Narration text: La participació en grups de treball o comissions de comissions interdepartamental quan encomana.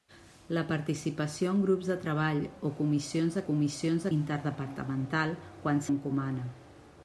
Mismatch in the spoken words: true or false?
false